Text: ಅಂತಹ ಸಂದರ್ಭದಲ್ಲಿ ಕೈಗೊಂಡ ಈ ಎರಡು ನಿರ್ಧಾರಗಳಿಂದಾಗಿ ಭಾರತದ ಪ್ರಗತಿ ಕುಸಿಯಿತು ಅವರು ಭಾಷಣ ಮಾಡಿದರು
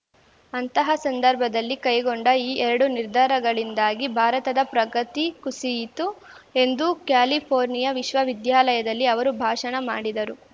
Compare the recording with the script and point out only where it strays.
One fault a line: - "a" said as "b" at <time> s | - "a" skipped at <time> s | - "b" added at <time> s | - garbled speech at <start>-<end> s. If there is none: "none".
- "ಎಂದು ಕ್ಯಾಲಿಫೋರ್ನಿಯಾ ವಿಶ್ವವಿದ್ಯಾಲಯದಲ್ಲಿ" added at 6.6 s